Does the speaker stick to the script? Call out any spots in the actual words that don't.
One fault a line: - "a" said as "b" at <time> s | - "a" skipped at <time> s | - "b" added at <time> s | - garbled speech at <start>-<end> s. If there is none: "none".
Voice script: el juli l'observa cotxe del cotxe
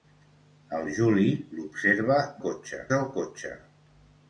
none